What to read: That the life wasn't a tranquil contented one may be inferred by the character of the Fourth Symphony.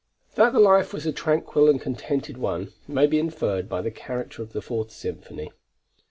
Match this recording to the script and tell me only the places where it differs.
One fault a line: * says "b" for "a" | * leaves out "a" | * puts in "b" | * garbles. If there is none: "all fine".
* says "was" for "wasn't"
* puts in "and"